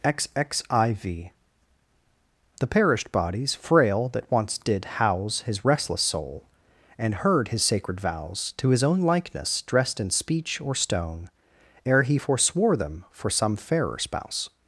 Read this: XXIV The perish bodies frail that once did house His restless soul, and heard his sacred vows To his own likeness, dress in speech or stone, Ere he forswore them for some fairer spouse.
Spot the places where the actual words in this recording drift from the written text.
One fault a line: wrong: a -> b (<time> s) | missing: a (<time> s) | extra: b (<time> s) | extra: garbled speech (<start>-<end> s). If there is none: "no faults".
wrong: perish -> perished (2.7 s)
wrong: dress -> dressed (9.6 s)